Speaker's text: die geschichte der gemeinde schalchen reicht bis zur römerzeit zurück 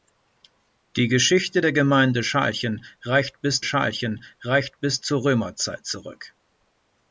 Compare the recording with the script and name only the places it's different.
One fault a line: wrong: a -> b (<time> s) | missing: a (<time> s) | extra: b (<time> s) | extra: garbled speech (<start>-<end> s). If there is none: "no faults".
extra: schalchen reicht bis (3.6 s)